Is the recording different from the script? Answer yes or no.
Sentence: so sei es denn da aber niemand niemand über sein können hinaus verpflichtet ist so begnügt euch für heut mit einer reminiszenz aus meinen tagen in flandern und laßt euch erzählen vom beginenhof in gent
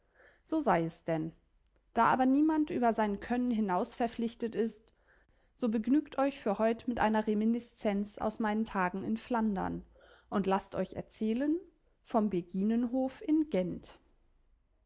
yes